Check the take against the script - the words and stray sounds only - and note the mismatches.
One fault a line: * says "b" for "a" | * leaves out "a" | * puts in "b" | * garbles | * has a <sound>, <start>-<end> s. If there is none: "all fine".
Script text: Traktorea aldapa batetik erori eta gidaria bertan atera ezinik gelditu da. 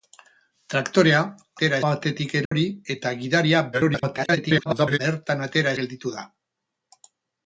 * says "atera" for "aldapa"
* has a dropout, 2.5-2.5 s
* garbles
* leaves out "ezinik"